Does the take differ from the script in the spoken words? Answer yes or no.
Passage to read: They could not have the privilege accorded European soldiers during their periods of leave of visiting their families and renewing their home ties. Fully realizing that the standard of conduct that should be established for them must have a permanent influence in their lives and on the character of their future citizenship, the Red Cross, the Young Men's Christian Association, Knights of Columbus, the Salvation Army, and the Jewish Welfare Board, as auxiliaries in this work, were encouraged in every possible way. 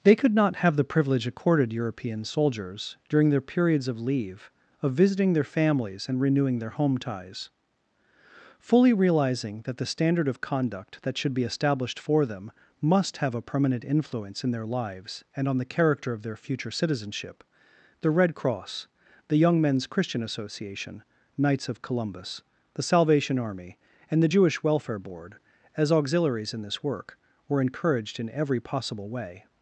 no